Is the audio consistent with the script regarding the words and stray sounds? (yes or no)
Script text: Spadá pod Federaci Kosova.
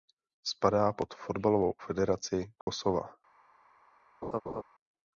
no